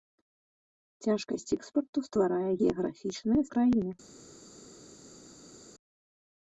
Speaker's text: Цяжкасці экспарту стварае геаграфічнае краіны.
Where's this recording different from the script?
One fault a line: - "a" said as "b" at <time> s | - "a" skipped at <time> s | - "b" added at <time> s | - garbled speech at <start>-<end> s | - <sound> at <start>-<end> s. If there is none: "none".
none